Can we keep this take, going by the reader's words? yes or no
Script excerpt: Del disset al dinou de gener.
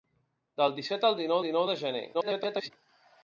no